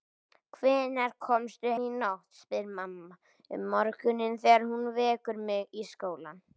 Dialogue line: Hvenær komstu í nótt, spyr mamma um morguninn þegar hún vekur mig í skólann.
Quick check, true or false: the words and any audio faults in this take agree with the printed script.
true